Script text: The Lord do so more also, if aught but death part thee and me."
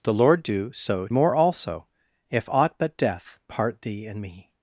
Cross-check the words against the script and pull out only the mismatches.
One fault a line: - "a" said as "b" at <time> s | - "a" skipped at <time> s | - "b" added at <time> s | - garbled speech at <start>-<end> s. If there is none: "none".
none